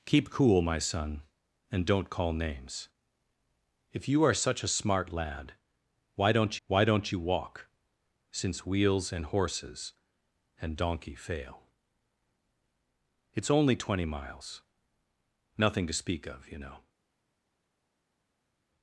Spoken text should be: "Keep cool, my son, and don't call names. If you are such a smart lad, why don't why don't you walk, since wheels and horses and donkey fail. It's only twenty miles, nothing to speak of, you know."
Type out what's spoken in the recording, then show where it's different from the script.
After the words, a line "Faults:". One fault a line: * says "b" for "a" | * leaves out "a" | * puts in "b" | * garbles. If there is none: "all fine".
"Keep cool, my son, and don't call names. If you are such a smart lad, why don't why don't you walk, since wheels and horses and donkey fail. It's only twenty miles, nothing to speak of, you know."
Faults:
all fine